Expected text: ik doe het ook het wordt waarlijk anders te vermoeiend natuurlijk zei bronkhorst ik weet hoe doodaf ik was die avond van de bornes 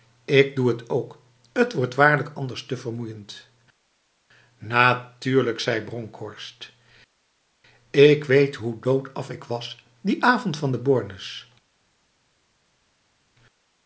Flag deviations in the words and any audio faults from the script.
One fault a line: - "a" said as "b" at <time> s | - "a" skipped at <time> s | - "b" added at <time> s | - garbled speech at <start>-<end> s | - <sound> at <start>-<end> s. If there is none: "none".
none